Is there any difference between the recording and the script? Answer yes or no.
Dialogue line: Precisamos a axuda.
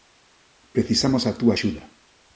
yes